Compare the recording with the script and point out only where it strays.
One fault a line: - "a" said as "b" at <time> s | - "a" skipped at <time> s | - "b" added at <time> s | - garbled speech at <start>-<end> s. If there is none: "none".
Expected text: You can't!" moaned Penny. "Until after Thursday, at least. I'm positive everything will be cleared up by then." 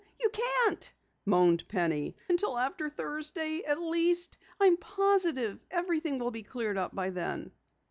none